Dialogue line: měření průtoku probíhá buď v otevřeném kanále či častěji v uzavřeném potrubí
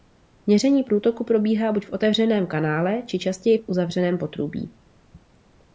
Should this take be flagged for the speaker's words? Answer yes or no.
no